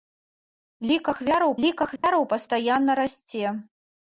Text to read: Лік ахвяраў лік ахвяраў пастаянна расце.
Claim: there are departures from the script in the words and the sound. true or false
true